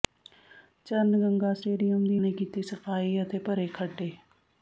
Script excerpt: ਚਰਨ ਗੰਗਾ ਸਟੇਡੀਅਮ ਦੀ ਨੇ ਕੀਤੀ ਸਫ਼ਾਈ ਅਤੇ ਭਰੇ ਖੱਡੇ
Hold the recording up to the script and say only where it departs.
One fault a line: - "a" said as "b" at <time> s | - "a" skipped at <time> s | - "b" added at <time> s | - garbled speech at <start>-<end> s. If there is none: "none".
none